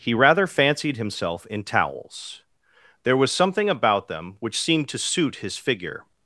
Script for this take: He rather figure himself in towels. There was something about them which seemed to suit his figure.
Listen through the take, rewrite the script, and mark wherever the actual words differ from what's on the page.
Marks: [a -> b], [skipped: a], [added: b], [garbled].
He rather [figure -> fancied] himself in towels. There was something about them which seemed to suit his figure.